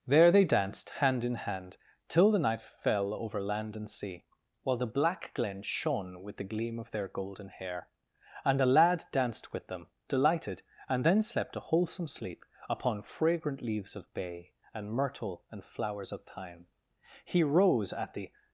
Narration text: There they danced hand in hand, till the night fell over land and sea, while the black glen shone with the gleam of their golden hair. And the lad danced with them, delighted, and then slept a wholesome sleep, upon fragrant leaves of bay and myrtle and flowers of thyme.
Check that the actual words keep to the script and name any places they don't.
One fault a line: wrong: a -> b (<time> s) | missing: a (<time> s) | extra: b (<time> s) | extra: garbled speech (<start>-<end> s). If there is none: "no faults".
extra: He rose at the (17.3 s)